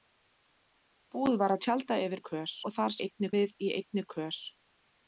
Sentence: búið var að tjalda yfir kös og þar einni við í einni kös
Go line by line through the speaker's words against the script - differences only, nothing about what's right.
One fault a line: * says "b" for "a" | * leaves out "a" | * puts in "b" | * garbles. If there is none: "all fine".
all fine